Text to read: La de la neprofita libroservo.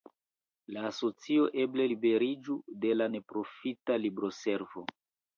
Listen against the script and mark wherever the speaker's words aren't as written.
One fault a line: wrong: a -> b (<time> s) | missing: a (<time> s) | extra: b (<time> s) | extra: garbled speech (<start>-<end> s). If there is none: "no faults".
extra: asocio eble liberiĝu (0.9 s)